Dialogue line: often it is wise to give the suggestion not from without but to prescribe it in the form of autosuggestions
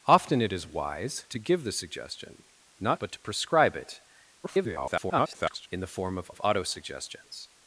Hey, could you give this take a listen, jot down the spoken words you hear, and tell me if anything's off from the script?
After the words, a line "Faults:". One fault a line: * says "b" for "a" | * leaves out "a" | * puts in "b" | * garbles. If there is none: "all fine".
often it is wise to give the suggestion not but to prescribe it [garbled] in the form of of autosuggestions
Faults:
* leaves out "from without"
* garbles
* puts in "of"